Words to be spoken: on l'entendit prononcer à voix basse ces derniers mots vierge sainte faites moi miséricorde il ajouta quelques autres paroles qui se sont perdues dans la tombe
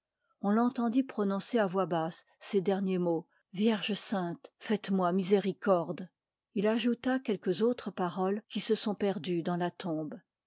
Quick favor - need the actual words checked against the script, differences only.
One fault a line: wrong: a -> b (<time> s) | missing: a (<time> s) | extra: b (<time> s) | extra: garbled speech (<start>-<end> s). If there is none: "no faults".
no faults